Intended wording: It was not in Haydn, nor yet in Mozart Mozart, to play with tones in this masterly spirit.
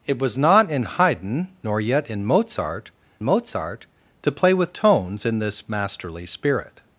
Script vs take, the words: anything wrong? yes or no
no